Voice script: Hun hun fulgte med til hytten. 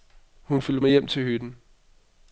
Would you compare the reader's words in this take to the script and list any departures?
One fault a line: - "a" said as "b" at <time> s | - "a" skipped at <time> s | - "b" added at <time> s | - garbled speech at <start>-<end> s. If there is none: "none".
- "hun" skipped at 0.6 s
- "hjem" added at 0.9 s